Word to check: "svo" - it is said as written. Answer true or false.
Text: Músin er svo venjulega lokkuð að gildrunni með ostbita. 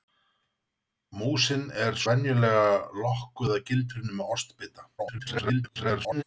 false